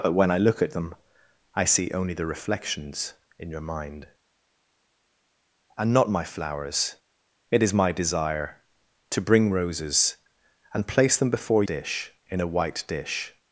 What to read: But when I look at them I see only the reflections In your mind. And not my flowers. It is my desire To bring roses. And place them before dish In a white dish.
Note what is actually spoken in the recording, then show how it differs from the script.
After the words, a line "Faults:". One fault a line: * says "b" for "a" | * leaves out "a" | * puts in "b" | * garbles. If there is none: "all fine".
But when I look at them I see only the reflections In your mind. And not my flowers. It is my desire To bring roses. And place them before dish In a white dish.
Faults:
all fine